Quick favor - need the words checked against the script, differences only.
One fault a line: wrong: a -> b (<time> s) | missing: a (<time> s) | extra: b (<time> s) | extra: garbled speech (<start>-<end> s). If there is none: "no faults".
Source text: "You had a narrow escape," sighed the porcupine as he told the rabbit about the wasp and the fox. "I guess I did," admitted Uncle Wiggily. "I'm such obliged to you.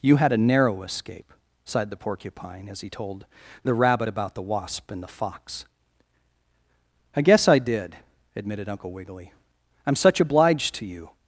no faults